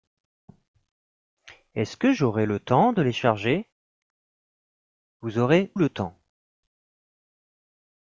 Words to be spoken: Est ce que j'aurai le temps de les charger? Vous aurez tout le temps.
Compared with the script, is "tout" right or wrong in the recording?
wrong